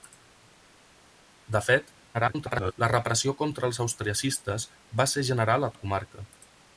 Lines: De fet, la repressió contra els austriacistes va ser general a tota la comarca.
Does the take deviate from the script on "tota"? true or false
true